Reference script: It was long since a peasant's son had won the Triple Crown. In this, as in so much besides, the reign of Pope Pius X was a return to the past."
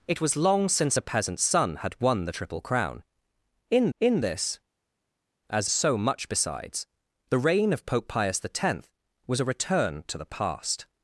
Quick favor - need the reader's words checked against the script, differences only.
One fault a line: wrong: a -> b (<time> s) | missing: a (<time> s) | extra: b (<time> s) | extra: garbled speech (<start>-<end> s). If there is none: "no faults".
extra: in (4.0 s)
missing: in (5.7 s)